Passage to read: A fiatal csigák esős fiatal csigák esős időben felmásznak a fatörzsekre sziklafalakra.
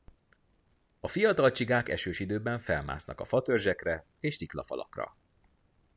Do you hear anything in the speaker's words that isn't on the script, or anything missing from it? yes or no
yes